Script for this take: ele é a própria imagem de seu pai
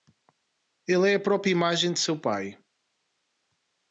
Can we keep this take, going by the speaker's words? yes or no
yes